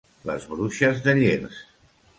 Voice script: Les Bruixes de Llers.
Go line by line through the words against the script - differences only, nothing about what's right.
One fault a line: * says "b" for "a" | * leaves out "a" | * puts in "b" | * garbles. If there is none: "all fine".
all fine